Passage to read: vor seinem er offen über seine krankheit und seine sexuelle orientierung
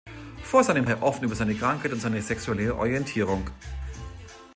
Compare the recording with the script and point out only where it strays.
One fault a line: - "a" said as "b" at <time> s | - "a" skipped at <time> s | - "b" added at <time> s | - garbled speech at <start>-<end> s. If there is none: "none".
none